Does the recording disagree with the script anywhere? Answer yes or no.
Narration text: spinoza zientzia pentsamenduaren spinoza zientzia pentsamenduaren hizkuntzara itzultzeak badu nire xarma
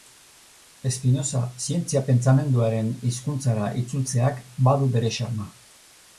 yes